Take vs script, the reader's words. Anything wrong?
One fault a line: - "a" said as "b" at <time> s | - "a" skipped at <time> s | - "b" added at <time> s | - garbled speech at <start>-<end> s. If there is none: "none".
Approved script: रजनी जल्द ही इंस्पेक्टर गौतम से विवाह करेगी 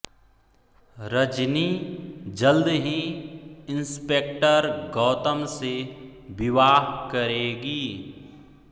none